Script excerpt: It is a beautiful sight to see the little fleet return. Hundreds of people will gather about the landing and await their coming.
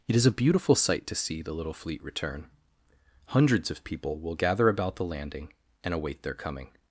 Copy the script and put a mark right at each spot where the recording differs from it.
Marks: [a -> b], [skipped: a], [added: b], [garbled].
It is a beautiful sight to see the little fleet return. Hundreds of people will gather about the landing and await their coming.